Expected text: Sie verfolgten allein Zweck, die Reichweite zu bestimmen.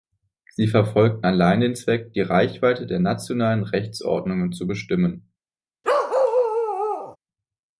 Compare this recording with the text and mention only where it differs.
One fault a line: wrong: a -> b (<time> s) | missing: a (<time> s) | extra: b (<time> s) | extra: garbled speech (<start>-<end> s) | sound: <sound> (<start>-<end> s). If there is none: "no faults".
extra: den (1.6 s)
extra: der nationalen Rechtsordnungen (2.9 s)
sound: bark (5.8-7.2 s)